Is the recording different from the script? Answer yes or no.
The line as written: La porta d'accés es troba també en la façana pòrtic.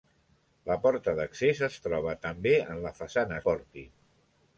no